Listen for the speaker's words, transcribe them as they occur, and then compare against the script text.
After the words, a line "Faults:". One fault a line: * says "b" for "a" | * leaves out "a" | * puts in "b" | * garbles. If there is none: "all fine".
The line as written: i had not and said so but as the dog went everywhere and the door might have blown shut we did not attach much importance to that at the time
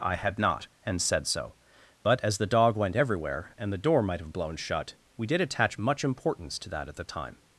i had not and said so but as the dog went everywhere and the door might have blown shut we did attach much importance to that at the time
Faults:
* leaves out "not"